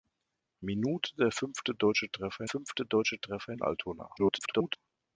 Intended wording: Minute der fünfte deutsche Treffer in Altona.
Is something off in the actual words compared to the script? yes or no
yes